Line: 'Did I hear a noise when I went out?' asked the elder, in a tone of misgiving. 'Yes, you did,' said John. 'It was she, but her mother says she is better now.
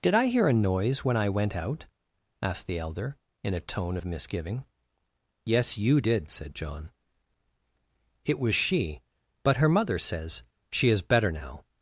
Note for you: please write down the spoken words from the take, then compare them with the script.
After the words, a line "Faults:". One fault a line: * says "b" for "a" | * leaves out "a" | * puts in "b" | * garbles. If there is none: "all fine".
'Did I hear a noise when I went out?' asked the elder, in a tone of misgiving. 'Yes, you did,' said John. 'It was she, but her mother says she is better now.
Faults:
all fine